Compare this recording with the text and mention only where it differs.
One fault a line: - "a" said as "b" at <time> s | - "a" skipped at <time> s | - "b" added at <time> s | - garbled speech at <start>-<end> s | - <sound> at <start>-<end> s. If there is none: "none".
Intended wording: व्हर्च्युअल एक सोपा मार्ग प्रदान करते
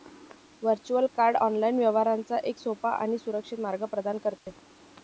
- "कार्ड ऑनलाइन व्यवहारांचा" added at 1.2 s
- "आणि सुरक्षित" added at 2.9 s
- dropout at 4.4-4.5 s